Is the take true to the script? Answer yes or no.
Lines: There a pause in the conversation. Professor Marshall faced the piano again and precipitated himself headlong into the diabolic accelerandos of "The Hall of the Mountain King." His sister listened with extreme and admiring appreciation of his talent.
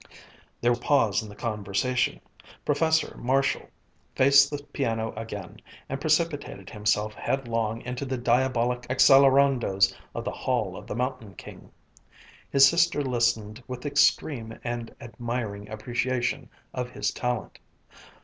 yes